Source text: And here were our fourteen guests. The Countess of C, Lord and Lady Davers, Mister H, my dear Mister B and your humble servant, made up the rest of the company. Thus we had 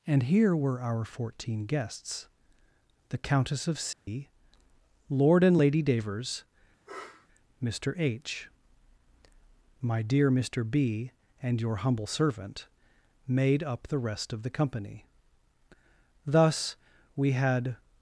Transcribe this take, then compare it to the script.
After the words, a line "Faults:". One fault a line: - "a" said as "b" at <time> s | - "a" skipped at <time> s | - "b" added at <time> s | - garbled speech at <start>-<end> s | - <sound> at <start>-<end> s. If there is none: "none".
And here were our fourteen guests. The Countess of C, Lord and Lady Davers, Mister H, my dear Mister B and your humble servant, made up the rest of the company. Thus we had
Faults:
- dropout at 3.9-4.1 s
- sniff at 6.9-7.3 s